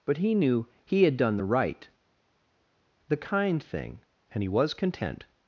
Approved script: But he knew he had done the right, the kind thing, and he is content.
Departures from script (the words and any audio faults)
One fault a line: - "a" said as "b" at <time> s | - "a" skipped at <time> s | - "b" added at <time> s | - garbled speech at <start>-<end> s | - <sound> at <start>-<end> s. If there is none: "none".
- "is" said as "was" at 4.5 s